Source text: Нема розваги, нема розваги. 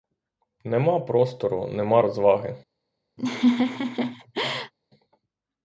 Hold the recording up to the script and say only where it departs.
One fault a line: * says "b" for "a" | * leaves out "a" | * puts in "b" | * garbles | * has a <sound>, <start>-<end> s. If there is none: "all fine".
* says "простору" for "розваги"
* has a laugh, 3.2-4.7 s